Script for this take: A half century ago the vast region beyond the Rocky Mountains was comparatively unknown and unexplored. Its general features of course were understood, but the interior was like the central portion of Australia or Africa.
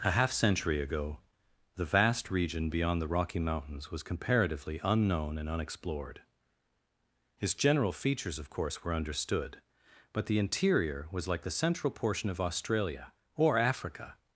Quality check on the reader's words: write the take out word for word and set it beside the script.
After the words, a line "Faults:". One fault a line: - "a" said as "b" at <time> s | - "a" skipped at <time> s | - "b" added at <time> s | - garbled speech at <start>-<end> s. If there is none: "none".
A half century ago the vast region beyond the Rocky Mountains was comparatively unknown and unexplored. Its general features of course were understood, but the interior was like the central portion of Australia or Africa.
Faults:
none